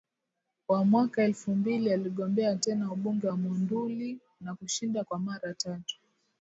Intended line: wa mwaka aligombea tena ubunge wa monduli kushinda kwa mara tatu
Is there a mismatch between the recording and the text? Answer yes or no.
yes